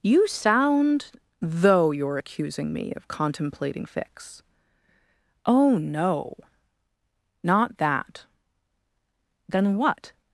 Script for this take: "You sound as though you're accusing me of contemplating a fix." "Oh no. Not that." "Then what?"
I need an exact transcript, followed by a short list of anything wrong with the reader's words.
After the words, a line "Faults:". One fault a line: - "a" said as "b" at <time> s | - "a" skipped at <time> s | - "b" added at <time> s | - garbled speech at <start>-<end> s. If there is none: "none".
"You sound though you're accusing me of contemplating fix." "Oh no. Not that." "Then what?"
Faults:
- "as" skipped at 1.1 s
- "a" skipped at 3.9 s